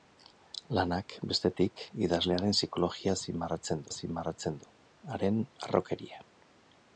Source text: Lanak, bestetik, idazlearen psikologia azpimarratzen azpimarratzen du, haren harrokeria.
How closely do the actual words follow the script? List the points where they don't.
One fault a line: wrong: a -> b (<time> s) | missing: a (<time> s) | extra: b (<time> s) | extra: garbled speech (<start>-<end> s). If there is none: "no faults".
no faults